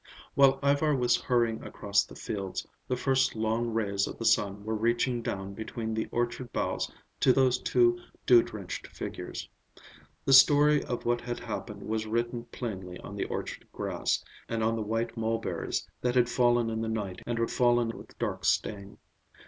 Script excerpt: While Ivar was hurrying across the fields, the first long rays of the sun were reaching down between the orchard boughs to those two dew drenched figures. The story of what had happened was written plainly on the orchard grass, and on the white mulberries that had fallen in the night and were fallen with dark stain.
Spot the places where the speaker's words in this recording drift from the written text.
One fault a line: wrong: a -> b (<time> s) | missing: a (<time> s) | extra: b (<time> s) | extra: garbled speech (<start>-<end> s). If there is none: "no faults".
no faults